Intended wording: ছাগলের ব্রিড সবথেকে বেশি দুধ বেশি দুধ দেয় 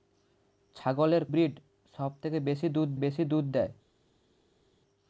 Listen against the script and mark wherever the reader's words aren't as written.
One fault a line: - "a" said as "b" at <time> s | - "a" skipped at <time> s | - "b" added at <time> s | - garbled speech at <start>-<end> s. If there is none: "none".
none